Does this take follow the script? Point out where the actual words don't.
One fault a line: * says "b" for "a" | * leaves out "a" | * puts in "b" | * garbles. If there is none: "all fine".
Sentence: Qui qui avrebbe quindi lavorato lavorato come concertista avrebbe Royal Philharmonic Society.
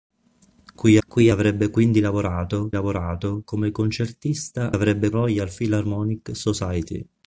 all fine